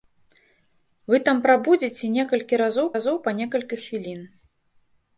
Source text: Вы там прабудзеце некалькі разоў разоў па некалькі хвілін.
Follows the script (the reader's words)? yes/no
yes